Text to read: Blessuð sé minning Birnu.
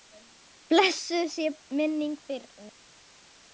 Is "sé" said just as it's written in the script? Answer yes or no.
yes